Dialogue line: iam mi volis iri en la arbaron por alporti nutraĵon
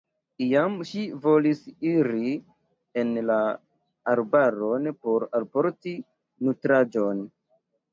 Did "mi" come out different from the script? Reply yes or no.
yes